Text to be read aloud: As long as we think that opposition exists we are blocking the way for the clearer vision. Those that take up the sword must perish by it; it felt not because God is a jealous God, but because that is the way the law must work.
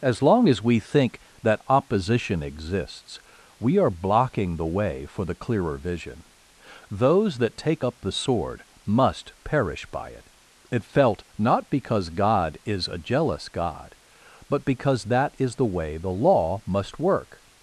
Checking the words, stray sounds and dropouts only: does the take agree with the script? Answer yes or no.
yes